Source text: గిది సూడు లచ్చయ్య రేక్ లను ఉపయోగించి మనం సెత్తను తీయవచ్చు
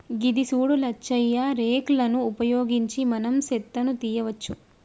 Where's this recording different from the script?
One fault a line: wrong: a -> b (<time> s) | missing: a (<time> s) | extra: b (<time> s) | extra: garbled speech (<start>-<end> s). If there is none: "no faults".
no faults